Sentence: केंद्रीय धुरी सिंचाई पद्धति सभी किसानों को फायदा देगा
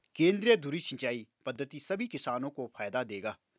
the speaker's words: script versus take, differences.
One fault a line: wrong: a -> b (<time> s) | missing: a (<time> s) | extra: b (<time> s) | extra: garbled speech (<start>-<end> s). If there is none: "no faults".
no faults